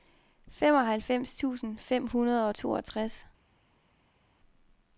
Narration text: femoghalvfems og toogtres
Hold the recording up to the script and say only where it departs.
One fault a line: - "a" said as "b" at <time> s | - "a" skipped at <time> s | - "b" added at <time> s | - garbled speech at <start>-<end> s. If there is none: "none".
- "tusind fem hundrede" added at 1.4 s